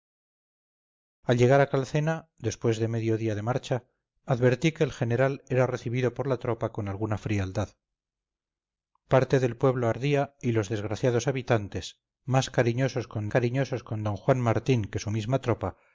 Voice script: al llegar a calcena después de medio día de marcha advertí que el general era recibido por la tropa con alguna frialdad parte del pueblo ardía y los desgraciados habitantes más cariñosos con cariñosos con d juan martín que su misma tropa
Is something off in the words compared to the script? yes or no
no